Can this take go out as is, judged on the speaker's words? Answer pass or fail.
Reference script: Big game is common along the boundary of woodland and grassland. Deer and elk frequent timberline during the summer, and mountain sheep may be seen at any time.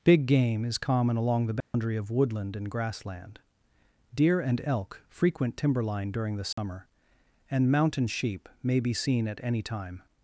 pass